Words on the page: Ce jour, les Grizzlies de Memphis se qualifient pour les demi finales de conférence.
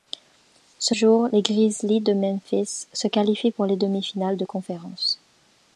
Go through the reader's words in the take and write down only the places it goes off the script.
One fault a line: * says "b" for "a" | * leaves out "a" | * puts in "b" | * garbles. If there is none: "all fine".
all fine